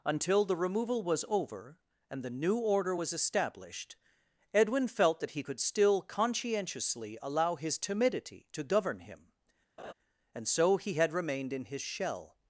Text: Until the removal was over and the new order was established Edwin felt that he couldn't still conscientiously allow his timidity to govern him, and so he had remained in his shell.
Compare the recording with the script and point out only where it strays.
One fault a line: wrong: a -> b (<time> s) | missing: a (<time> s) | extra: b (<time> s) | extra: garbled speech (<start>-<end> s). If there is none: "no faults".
wrong: couldn't -> could (5.4 s)